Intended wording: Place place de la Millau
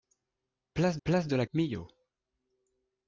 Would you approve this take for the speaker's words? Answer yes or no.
yes